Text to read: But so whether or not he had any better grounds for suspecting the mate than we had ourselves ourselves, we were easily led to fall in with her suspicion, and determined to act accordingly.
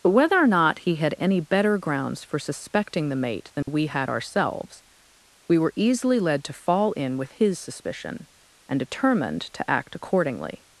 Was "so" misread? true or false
true